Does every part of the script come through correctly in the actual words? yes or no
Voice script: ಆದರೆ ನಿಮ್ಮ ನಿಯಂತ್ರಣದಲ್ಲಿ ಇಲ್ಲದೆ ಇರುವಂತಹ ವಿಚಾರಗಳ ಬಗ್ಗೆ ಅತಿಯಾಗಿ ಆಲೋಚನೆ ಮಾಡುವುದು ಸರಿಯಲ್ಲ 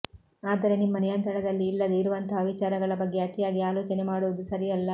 yes